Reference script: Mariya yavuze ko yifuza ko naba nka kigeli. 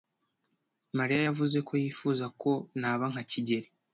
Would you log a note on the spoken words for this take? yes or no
no